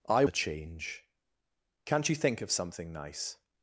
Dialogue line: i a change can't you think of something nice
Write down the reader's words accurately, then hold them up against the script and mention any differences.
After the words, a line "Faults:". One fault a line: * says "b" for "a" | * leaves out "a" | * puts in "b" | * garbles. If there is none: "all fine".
i a change can't you think of something nice
Faults:
all fine